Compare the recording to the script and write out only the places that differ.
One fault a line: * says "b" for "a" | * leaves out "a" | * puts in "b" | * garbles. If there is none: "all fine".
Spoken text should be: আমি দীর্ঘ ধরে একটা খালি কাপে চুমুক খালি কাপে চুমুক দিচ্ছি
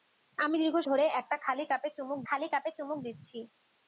all fine